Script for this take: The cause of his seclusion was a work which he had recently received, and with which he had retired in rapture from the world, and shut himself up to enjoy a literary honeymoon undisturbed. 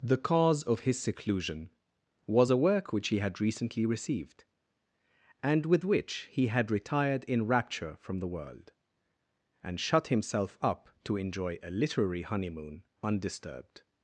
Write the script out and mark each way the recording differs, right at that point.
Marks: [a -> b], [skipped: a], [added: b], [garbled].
The cause of his seclusion was a work which he had recently received, and with which he had retired in rapture from the world, and shut himself up to enjoy a literary honeymoon undisturbed.